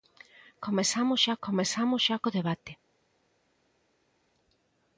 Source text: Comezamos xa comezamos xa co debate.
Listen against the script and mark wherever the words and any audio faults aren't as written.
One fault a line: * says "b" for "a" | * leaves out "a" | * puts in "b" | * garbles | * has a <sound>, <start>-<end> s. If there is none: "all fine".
all fine